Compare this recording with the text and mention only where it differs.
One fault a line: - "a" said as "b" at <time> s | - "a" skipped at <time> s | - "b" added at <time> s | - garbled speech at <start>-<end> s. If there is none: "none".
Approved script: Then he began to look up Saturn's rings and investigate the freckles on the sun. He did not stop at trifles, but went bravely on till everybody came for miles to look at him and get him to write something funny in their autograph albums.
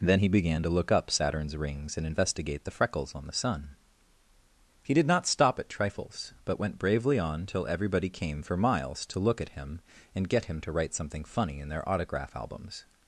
none